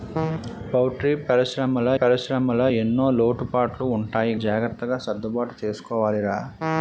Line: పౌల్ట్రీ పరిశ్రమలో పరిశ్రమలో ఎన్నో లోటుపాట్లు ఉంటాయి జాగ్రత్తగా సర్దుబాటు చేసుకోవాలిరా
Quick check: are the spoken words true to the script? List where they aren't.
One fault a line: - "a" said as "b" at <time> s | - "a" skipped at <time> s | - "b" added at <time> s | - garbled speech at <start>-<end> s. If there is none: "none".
none